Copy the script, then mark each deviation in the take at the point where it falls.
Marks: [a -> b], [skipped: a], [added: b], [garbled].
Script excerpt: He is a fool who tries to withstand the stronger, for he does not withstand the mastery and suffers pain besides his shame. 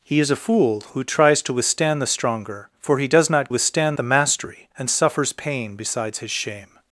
He is a fool who tries to withstand the stronger, for he does not withstand the mastery and suffers pain besides his shame.